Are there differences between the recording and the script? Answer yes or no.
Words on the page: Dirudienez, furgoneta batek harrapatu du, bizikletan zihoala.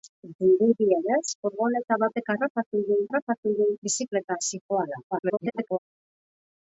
yes